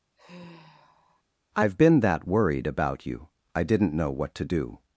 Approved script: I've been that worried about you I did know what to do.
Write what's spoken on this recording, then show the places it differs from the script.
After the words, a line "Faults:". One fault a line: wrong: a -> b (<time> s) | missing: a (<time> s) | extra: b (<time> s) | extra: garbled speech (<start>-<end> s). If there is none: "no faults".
I've been that worried about you I didn't know what to do.
Faults:
wrong: did -> didn't (3.6 s)